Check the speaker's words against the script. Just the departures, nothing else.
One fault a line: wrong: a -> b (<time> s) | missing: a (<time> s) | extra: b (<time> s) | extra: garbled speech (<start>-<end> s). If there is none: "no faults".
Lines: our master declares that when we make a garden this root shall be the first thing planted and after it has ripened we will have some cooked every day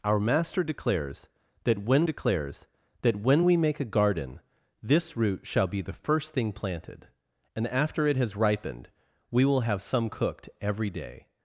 extra: declares that when (2.0 s)